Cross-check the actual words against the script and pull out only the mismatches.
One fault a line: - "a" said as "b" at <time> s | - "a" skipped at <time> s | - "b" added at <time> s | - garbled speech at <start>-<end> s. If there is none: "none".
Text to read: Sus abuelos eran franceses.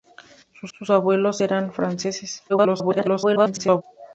- "sus" added at 0.8 s
- garbled speech at 2.5-3.8 s